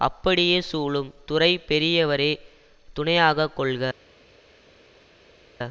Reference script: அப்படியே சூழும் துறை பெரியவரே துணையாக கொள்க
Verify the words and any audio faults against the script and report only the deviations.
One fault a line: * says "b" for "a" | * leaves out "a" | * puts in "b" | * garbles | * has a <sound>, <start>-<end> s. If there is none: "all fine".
all fine